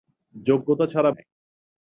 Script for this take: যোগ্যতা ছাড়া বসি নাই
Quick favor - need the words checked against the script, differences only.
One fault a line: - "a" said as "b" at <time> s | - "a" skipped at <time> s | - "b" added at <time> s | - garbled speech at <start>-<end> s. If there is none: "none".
- "বসি" skipped at 1.1 s